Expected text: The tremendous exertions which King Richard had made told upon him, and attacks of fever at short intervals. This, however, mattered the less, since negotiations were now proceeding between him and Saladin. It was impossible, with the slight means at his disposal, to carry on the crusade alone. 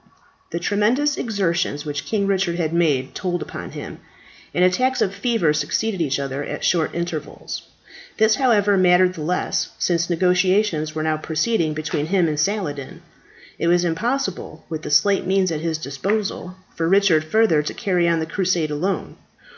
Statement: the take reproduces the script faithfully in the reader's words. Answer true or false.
false